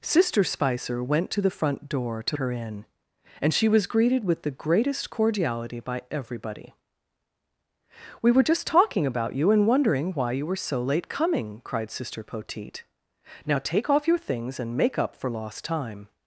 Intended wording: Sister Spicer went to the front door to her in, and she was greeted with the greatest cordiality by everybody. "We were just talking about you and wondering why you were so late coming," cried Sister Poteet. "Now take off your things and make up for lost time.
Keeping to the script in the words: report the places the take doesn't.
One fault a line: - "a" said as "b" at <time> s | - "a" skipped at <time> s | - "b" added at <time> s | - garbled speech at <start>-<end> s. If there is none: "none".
none